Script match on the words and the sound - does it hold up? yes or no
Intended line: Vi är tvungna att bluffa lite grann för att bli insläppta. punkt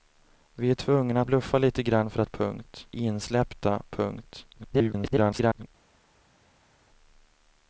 no